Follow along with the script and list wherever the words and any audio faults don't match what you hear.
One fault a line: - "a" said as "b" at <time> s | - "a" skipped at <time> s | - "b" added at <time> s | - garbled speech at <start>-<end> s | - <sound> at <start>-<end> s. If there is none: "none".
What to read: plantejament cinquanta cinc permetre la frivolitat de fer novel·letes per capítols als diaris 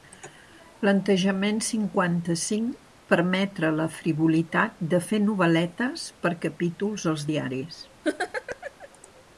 - laugh at 8.0-8.9 s